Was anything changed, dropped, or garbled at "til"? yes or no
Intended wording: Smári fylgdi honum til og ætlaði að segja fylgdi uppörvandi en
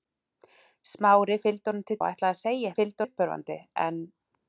no